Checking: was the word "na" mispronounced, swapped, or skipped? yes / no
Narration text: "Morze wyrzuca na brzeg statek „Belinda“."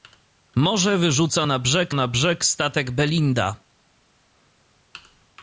no